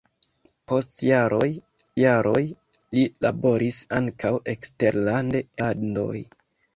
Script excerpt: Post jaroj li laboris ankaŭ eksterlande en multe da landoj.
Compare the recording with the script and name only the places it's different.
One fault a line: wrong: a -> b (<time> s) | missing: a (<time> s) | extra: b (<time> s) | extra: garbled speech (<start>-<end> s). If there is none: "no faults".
extra: jaroj (2.0 s)
missing: en multe da (5.4 s)